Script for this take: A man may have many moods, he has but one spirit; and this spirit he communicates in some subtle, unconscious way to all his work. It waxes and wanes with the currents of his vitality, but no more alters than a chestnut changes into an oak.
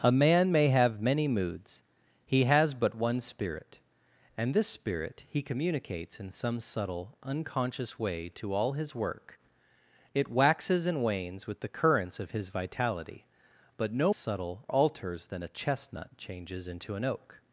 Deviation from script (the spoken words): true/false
true